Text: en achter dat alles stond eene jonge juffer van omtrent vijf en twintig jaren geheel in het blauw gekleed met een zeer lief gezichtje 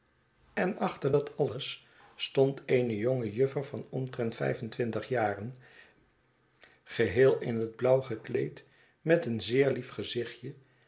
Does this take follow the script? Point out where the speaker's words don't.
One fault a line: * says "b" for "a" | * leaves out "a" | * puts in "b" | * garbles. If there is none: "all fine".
all fine